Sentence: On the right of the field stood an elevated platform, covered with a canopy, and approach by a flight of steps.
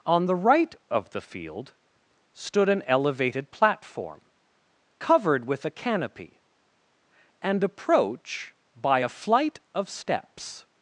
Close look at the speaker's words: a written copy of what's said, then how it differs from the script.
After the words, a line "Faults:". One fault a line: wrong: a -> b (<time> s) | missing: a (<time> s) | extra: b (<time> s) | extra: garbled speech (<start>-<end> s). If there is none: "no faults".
On the right of the field stood an elevated platform, covered with a canopy, and approach by a flight of steps.
Faults:
no faults